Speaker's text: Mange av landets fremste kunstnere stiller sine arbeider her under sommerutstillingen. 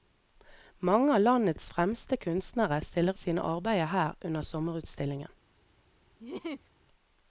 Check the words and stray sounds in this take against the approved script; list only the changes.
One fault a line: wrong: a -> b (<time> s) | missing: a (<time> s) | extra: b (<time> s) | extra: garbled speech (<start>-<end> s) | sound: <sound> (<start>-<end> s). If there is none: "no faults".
sound: laugh (6.2-6.7 s)